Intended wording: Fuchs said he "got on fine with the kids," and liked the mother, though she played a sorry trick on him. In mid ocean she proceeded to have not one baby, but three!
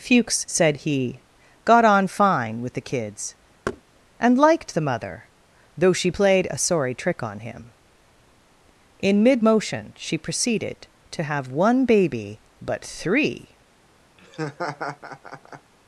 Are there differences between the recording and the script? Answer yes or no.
yes